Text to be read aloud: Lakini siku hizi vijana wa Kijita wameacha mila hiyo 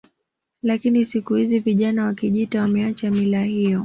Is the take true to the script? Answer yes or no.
yes